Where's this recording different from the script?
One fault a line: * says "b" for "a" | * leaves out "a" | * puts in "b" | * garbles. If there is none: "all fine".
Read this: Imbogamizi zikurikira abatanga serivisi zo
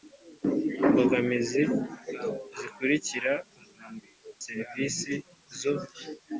* leaves out "abatanga"